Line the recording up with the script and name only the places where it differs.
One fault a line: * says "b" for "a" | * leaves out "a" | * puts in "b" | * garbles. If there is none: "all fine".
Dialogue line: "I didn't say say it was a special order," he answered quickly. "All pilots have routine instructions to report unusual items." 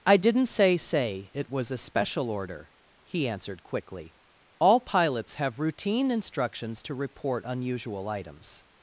all fine